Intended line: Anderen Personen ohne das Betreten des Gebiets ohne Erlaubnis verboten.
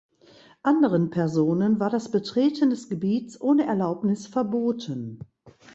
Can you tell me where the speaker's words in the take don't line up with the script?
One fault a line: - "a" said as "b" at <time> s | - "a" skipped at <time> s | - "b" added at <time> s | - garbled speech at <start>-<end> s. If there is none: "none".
- "ohne" said as "war" at 1.8 s